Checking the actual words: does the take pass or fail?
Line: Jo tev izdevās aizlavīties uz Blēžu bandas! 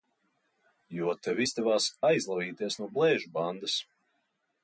fail